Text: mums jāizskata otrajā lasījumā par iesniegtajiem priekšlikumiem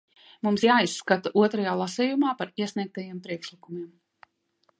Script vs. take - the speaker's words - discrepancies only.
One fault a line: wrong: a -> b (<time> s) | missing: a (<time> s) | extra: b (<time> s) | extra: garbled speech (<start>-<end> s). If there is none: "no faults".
no faults